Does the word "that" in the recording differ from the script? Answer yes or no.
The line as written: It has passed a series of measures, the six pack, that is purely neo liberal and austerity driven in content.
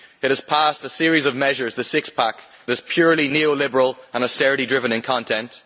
yes